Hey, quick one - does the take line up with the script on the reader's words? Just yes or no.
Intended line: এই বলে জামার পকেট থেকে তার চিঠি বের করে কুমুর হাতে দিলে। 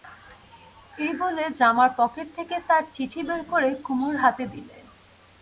yes